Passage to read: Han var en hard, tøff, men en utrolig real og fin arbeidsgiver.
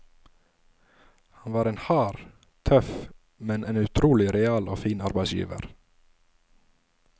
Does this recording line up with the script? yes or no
yes